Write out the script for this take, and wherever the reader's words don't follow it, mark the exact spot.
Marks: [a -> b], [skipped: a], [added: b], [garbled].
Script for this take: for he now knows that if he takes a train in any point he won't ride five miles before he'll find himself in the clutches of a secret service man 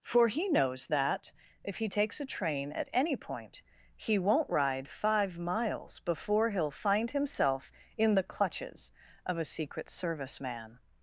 for he [skipped: now] knows that if he takes a train [in -> at] any point he won't ride five miles before he'll find himself in the clutches of a secret service man